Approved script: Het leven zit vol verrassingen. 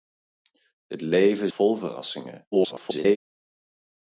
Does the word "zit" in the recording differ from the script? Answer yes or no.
yes